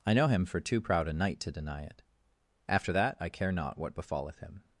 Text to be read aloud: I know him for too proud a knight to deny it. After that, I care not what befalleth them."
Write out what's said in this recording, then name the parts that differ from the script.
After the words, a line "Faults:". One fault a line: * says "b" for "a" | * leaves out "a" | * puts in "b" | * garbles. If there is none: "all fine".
I know him for too proud a knight to deny it. After that, I care not what befalleth him."
Faults:
* says "him" for "them"